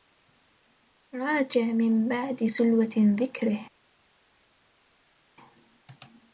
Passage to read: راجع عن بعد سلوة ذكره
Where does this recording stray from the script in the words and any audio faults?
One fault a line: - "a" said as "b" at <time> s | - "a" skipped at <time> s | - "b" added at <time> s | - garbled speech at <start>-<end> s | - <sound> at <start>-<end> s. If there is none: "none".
- "عن" said as "من" at 1.6 s